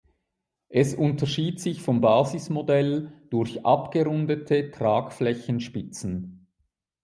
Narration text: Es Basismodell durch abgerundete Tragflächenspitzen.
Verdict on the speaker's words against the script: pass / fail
fail